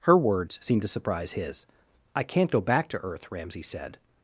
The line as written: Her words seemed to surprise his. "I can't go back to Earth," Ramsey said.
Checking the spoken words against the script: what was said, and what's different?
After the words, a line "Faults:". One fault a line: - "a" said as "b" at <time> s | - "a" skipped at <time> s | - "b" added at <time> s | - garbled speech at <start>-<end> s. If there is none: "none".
Her words seemed to surprise his. "I can't go back to Earth," Ramsey said.
Faults:
none